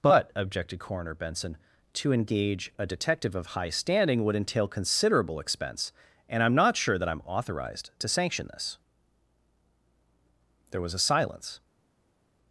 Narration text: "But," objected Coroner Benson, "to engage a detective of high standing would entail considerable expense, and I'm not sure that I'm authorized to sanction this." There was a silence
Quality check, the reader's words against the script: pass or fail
pass